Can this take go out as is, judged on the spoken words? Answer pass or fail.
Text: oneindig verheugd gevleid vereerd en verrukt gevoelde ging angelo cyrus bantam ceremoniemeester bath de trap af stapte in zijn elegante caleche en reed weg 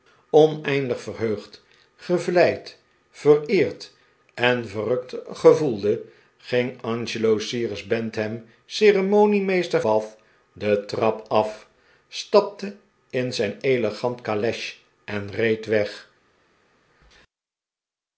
pass